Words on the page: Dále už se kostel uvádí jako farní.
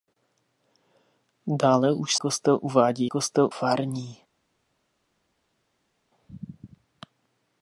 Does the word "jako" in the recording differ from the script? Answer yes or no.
yes